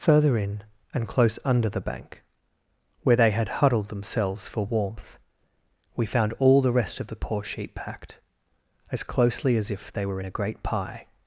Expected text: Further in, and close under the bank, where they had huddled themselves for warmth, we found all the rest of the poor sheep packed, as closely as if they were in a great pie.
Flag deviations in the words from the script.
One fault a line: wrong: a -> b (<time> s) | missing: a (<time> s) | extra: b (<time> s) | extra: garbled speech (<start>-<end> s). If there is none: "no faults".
no faults